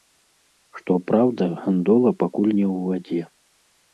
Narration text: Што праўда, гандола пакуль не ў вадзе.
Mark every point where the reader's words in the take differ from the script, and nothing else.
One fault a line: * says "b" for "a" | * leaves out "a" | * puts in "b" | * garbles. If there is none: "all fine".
all fine